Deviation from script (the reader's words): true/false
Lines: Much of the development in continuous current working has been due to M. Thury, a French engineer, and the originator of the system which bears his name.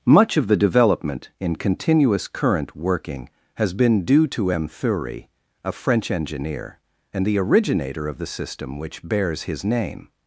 false